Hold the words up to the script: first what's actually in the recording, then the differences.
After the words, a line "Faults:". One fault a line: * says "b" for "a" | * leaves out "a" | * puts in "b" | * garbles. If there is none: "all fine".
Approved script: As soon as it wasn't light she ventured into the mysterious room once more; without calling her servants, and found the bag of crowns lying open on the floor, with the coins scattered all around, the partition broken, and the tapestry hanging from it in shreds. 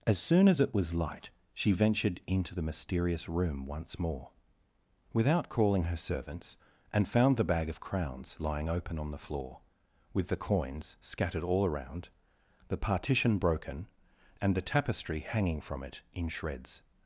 As soon as it was light she ventured into the mysterious room once more; without calling her servants, and found the bag of crowns lying open on the floor, with the coins scattered all around, the partition broken, and the tapestry hanging from it in shreds.
Faults:
* says "was" for "wasn't"